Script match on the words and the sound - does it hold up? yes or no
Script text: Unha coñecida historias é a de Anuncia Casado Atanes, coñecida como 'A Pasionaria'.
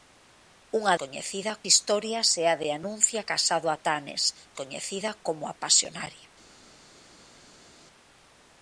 yes